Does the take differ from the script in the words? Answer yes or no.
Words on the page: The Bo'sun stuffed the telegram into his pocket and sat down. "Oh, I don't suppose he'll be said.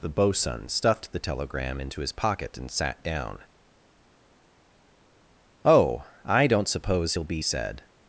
no